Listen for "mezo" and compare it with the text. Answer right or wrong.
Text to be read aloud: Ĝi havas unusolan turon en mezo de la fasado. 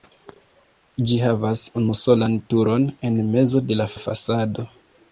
right